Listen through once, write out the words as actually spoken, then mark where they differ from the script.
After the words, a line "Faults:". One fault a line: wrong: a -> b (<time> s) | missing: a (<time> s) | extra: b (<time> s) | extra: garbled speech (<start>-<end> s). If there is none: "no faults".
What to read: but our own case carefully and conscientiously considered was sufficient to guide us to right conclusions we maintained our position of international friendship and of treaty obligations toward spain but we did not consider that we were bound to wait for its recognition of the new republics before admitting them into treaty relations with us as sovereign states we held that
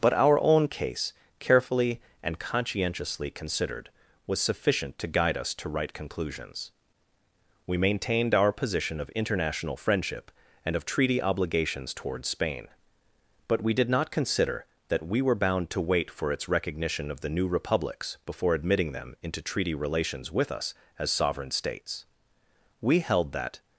but our own case carefully and conscientiously considered was sufficient to guide us to right conclusions we maintained our position of international friendship and of treaty obligations toward spain but we did not consider that we were bound to wait for its recognition of the new republics before admitting them into treaty relations with us as sovereign states we held that
Faults:
no faults